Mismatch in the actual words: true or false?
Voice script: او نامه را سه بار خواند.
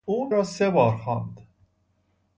true